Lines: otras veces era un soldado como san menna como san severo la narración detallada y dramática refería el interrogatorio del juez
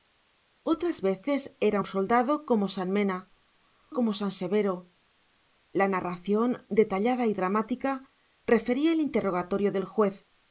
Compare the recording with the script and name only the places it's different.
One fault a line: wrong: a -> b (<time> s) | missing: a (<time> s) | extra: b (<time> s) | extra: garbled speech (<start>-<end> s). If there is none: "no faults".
no faults